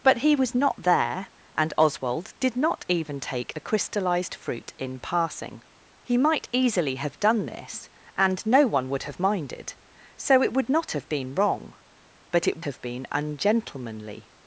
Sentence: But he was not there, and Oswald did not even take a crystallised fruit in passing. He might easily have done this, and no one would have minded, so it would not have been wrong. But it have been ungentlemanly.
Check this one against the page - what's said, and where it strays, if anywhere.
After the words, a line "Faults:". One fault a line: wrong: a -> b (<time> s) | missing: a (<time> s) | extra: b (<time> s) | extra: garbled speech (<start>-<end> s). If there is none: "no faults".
But he was not there, and Oswald did not even take a crystallised fruit in passing. He might easily have done this, and no one would have minded, so it would not have been wrong. But it have been ungentlemanly.
Faults:
no faults